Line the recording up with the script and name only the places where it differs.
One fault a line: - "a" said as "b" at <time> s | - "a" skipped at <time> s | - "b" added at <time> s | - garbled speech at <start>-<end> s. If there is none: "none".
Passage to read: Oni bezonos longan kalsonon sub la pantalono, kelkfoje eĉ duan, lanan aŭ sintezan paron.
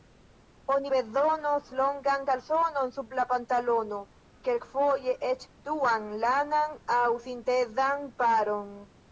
none